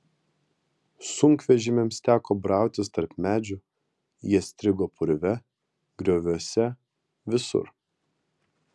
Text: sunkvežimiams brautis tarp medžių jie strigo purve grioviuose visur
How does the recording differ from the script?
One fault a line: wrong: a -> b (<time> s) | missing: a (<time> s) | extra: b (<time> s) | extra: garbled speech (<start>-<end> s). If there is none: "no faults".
extra: teko (2.1 s)